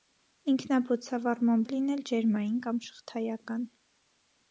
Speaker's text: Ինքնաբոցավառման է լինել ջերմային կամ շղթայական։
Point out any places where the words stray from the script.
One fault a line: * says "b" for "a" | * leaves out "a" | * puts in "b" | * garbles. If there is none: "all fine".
all fine